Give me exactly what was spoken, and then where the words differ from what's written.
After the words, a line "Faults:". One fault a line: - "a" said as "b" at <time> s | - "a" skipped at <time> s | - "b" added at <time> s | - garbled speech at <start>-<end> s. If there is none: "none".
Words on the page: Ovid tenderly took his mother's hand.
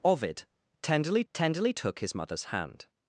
Ovid tenderly tenderly took his mother's hand.
Faults:
- "tenderly" added at 1.3 s